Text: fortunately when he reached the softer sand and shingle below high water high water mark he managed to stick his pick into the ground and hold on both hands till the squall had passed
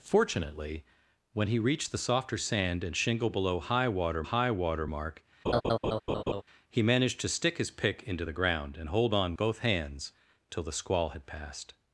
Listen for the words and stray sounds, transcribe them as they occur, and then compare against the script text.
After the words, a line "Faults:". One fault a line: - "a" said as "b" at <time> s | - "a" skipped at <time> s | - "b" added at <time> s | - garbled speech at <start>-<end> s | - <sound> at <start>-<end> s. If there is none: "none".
fortunately when he reached the softer sand and shingle below high water high water mark he managed to stick his pick into the ground and hold on both hands till the squall had passed
Faults:
- laugh at 5.5-6.4 s